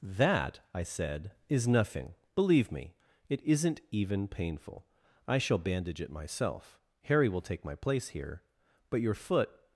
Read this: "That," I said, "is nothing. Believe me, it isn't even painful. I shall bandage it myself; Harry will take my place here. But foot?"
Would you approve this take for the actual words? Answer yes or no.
no